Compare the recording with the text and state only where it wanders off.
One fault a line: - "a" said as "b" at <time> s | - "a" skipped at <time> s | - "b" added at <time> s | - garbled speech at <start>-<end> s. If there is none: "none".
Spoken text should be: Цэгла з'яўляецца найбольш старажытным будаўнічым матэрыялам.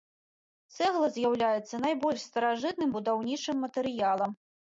none